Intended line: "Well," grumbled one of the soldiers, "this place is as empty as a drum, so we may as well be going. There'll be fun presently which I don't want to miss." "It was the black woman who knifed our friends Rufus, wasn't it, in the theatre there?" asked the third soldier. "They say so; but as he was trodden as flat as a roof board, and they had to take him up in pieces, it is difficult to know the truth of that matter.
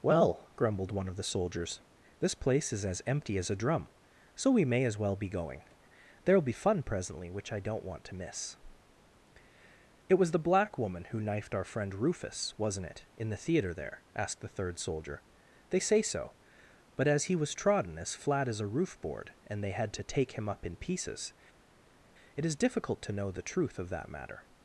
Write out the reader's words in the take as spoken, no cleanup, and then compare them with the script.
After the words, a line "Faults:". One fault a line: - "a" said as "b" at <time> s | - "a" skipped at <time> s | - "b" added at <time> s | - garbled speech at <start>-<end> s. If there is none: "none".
"Well," grumbled one of the soldiers, "this place is as empty as a drum, so we may as well be going. There'll be fun presently which I don't want to miss." "It was the black woman who knifed our friend Rufus, wasn't it, in the theatre there?" asked the third soldier. "They say so; but as he was trodden as flat as a roof board, and they had to take him up in pieces, it is difficult to know the truth of that matter.
Faults:
- "friends" said as "friend" at 11.6 s